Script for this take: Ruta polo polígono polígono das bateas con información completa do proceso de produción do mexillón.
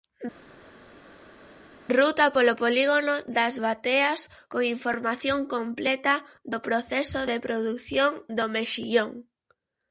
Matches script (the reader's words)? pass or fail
fail